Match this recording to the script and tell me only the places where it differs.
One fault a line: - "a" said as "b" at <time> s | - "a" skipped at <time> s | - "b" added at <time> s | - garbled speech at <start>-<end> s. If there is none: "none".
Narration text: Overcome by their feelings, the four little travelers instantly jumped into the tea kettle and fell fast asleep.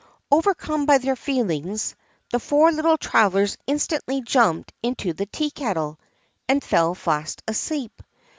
none